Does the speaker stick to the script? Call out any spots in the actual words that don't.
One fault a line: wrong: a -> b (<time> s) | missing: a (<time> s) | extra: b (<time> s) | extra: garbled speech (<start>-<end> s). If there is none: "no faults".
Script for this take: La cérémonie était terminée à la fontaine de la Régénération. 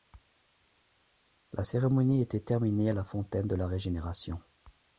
no faults